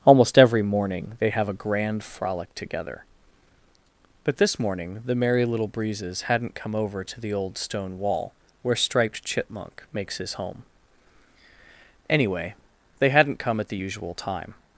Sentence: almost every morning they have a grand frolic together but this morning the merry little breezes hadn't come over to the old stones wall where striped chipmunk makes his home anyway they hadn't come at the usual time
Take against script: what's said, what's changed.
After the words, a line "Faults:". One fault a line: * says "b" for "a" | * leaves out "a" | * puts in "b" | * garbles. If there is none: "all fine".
almost every morning they have a grand frolic together but this morning the merry little breezes hadn't come over to the old stone wall where striped chipmunk makes his home anyway they hadn't come at the usual time
Faults:
* says "stone" for "stones"